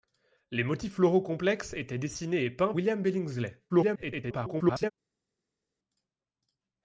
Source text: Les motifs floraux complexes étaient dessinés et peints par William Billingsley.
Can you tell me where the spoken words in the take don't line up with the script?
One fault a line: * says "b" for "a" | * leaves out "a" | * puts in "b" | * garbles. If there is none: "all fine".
* leaves out "par"
* garbles